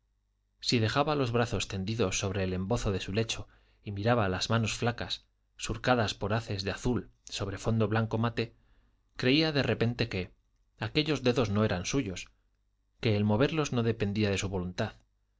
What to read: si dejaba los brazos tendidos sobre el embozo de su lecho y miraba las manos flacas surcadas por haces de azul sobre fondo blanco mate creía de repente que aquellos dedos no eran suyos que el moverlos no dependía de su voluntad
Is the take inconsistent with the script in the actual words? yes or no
no